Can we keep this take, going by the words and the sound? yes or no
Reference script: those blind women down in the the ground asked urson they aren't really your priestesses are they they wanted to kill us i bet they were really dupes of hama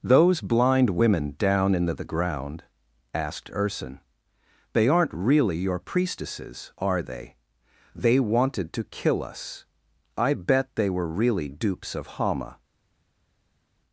yes